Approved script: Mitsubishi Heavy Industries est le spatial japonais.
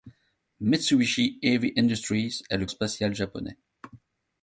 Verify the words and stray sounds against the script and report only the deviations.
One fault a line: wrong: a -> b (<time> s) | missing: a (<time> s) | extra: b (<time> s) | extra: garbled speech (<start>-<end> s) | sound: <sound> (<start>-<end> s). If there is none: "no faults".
no faults